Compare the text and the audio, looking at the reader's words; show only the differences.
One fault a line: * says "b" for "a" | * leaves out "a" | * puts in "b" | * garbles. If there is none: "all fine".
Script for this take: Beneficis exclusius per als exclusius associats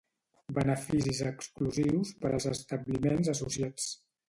* says "establiments" for "exclusius"